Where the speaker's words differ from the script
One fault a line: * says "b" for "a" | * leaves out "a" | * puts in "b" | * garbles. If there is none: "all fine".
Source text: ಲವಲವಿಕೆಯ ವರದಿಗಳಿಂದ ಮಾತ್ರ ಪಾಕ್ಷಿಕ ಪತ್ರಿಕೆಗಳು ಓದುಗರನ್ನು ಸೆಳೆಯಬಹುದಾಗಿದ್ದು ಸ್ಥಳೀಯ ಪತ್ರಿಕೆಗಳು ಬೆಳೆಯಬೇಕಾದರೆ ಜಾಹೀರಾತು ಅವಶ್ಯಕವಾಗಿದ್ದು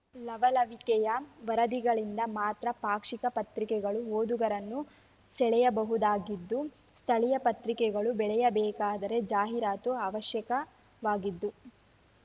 all fine